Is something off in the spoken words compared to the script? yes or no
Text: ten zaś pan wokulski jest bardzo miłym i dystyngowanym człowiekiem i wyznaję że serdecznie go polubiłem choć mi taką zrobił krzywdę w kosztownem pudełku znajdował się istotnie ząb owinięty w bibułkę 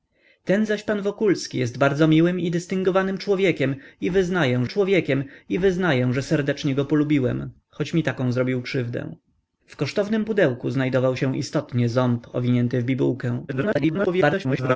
yes